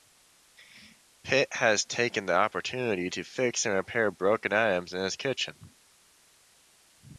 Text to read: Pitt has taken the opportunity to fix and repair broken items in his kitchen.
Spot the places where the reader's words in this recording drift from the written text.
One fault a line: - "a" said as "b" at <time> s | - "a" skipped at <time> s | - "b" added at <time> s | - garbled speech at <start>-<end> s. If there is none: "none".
none